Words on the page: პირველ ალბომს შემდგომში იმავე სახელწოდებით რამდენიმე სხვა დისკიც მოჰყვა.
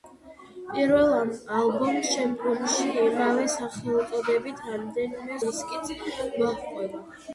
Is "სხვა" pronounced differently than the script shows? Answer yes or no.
yes